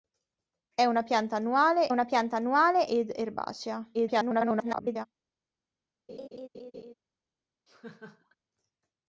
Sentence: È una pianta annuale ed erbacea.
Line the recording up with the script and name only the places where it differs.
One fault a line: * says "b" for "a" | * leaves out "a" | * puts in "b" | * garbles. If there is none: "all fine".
* puts in "una pianta annuale"
* garbles